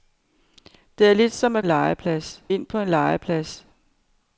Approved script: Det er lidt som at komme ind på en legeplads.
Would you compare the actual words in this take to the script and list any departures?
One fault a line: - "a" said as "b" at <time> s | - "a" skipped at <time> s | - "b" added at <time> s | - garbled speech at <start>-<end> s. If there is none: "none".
- "komme" said as "legeplads" at 1.6 s